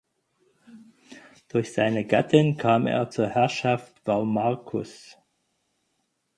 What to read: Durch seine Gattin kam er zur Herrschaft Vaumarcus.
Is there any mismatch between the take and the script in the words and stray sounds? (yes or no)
no